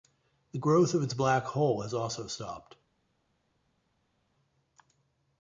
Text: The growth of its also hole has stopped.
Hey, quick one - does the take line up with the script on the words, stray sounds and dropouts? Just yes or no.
no